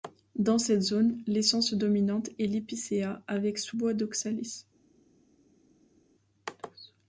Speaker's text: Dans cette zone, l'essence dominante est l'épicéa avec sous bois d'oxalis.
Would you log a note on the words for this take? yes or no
no